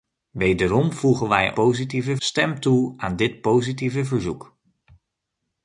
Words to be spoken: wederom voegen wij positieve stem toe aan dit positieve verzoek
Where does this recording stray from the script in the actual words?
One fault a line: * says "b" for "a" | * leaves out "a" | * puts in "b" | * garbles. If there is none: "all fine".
all fine